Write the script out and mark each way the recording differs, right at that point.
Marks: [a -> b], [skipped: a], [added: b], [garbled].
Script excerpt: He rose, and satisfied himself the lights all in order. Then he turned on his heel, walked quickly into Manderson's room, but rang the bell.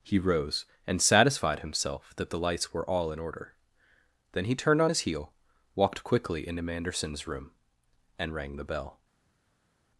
He rose, and satisfied himself [added: that] the lights [added: were] all in order. Then he turned on his heel, walked quickly into Manderson's room, [but -> and] rang the bell.